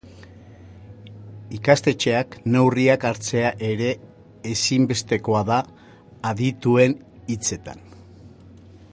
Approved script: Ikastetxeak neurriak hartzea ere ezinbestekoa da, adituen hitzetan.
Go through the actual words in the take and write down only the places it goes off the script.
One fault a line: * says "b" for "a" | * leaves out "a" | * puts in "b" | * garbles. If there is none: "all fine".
all fine